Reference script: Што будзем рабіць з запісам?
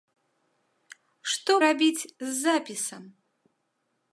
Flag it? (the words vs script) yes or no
yes